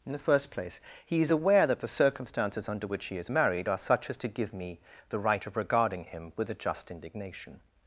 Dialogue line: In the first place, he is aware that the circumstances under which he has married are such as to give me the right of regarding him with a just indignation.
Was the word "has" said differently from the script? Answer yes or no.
yes